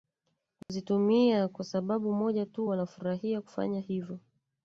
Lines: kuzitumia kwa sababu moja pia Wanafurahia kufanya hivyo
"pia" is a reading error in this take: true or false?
true